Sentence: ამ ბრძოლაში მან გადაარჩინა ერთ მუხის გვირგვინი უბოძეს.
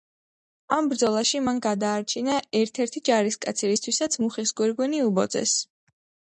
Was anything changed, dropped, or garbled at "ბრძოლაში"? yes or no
no